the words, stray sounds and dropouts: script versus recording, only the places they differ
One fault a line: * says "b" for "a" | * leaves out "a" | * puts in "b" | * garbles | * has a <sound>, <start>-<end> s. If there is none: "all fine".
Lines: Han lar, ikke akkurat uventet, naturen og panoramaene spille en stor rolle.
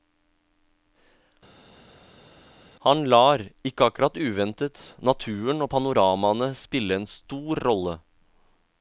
all fine